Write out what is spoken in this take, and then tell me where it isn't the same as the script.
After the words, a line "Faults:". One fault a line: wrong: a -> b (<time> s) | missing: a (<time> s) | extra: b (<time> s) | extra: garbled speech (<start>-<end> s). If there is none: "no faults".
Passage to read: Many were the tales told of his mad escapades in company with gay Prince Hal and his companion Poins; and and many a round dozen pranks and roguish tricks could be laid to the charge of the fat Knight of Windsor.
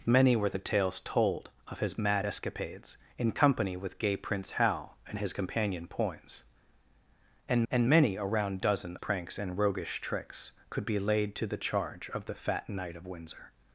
Many were the tales told of his mad escapades in company with gay Prince Hal and his companion Poins; and and many a round dozen pranks and roguish tricks could be laid to the charge of the fat Knight of Windsor.
Faults:
no faults